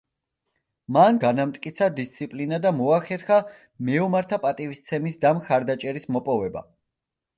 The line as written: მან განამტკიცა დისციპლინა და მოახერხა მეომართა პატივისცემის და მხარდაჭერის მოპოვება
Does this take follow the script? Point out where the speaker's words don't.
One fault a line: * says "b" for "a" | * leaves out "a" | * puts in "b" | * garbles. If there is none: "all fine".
all fine